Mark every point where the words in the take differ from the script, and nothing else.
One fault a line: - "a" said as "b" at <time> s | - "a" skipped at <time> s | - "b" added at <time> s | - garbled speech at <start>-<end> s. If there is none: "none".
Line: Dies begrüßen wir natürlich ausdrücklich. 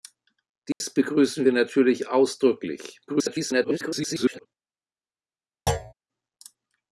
- garbled speech at 3.1-4.5 s